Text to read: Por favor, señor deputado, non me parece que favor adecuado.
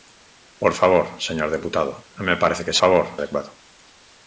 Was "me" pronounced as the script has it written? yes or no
yes